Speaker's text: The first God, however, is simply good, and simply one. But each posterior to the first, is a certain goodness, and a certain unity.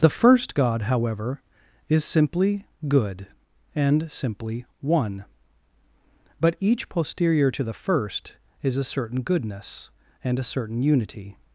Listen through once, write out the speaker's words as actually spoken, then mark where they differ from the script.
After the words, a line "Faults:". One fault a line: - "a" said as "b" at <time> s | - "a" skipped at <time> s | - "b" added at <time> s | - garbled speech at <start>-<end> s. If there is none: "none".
The first God, however, is simply good, and simply one. But each posterior to the first, is a certain goodness, and a certain unity.
Faults:
none